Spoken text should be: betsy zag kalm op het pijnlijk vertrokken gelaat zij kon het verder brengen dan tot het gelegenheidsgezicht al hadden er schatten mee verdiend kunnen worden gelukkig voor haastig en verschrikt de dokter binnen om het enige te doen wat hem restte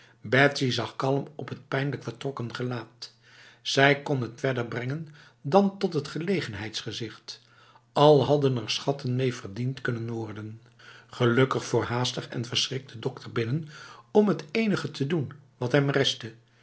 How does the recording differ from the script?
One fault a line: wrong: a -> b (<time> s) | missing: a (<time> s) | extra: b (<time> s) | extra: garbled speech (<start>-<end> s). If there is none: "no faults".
no faults